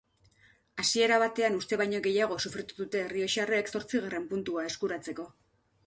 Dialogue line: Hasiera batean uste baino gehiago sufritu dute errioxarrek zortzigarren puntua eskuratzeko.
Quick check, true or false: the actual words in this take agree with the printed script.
true